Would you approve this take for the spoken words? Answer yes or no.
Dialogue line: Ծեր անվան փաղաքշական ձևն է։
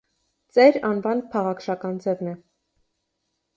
yes